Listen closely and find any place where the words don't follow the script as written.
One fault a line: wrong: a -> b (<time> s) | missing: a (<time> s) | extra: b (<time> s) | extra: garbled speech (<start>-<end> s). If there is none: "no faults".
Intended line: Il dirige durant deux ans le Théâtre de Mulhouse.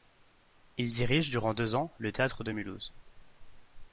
no faults